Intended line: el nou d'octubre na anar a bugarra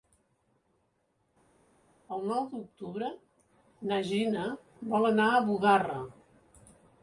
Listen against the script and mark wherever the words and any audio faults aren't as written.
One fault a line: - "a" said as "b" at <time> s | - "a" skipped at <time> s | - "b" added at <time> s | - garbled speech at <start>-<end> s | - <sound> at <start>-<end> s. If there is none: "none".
- "gina vol" added at 4.1 s